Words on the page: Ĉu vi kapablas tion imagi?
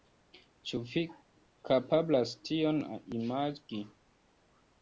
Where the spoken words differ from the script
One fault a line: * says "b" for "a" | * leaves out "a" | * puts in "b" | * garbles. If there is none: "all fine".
all fine